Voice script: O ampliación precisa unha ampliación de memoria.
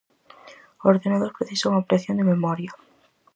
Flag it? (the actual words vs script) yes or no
yes